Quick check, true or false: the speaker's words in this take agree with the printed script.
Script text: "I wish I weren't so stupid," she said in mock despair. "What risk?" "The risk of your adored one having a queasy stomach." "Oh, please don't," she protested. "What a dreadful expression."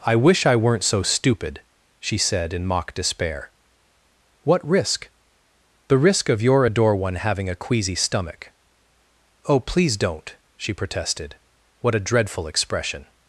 false